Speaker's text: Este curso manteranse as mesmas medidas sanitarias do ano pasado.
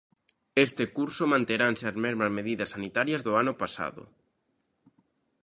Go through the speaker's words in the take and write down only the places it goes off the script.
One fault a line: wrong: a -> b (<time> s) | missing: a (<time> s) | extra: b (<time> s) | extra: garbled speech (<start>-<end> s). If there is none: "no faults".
no faults